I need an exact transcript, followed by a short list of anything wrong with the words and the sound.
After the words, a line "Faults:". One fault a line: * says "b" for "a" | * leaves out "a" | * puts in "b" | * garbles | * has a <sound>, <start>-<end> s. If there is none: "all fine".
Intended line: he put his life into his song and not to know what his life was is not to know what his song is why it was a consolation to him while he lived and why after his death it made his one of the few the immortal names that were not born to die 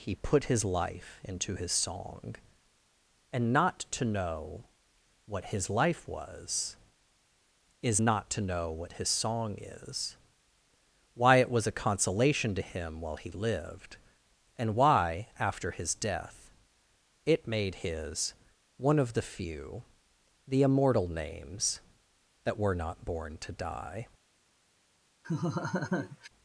he put his life into his song and not to know what his life was is not to know what his song is why it was a consolation to him while he lived and why after his death it made his one of the few the immortal names that were not born to die
Faults:
* has a laugh, 25.2-26.3 s